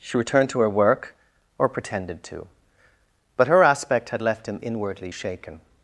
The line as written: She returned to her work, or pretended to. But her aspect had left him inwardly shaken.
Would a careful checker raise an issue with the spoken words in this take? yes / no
no